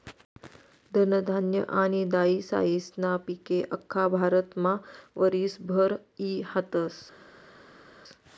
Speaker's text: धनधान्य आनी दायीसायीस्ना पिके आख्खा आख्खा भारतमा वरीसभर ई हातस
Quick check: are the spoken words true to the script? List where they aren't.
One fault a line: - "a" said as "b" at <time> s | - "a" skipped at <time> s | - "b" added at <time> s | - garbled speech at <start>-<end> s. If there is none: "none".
- "आख्खा" skipped at 4.1 s